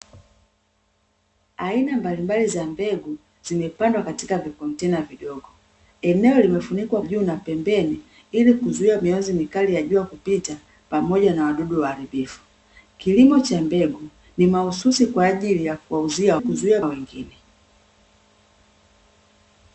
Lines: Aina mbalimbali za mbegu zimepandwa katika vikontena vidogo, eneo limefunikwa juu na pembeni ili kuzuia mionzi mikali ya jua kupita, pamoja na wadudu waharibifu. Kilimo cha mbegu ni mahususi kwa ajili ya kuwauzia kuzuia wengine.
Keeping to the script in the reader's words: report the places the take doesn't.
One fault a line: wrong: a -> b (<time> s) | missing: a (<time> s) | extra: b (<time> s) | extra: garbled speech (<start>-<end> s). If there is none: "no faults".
no faults